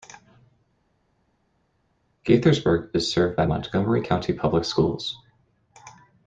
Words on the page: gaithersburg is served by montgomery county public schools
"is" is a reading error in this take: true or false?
false